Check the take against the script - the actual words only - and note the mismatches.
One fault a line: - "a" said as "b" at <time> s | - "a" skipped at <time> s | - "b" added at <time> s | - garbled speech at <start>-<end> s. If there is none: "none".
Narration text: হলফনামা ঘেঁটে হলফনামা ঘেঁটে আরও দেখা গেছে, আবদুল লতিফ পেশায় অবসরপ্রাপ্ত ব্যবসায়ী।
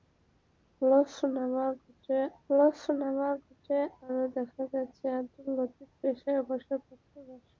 none